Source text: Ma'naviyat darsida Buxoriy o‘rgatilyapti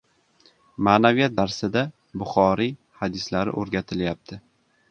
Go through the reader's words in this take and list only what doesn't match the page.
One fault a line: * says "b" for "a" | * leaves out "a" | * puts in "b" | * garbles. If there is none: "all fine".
* puts in "hadislari"